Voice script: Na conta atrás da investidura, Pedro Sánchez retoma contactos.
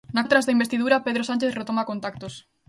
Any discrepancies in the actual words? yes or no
yes